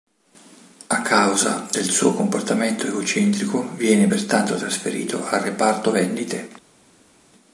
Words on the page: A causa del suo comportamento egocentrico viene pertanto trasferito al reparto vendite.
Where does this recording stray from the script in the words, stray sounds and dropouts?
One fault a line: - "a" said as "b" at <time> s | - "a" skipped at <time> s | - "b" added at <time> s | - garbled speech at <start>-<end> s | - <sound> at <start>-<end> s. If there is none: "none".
none